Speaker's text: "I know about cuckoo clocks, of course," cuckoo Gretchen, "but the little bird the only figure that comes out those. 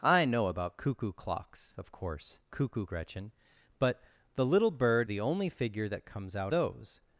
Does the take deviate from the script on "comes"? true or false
false